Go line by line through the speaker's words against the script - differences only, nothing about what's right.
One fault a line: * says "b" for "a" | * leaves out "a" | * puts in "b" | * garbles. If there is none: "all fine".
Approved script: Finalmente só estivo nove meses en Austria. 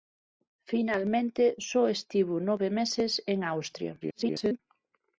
* garbles